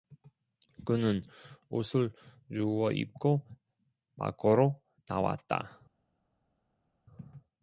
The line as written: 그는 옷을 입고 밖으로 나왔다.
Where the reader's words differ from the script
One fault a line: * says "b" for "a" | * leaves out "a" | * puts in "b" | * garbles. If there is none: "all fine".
* puts in "주워"